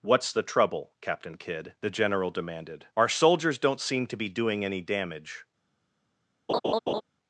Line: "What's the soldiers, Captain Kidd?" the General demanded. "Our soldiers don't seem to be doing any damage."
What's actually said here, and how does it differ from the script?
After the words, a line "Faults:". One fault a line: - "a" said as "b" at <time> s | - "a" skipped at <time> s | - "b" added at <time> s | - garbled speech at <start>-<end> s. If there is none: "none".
"What's the trouble, Captain Kidd?" the General demanded. "Our soldiers don't seem to be doing any damage."
Faults:
- "soldiers" said as "trouble" at 0.4 s